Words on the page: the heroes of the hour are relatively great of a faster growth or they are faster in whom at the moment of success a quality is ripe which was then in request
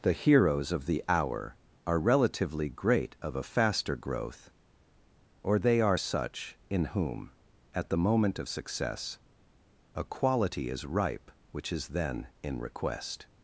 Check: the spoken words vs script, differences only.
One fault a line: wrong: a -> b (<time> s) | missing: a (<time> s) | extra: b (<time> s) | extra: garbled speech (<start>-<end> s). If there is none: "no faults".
wrong: faster -> such (6.0 s)
wrong: was -> is (11.7 s)